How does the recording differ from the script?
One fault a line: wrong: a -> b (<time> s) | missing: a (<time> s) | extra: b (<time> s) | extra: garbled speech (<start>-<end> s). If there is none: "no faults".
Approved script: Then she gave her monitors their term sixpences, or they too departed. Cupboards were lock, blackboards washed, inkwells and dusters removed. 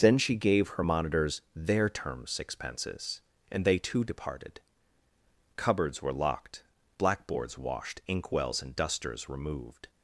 wrong: or -> and (3.5 s)
wrong: lock -> locked (6.1 s)